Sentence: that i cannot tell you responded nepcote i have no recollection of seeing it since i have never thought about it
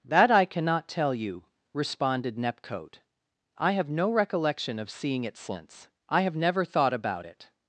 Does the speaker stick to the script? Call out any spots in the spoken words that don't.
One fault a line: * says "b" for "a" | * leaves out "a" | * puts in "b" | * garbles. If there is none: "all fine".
all fine